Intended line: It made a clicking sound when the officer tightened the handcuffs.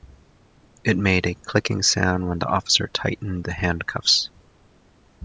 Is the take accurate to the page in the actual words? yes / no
yes